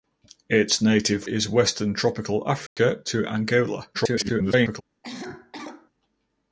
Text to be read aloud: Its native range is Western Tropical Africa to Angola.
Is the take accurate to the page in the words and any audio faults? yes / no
no